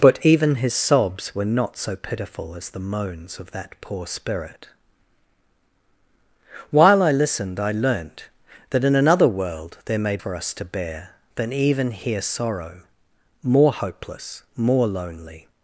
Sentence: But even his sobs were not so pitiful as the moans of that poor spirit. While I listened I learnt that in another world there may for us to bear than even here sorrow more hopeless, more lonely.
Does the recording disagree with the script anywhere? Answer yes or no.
no